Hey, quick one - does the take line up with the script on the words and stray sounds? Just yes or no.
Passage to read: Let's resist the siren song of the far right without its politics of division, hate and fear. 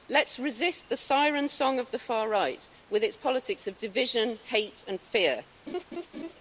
no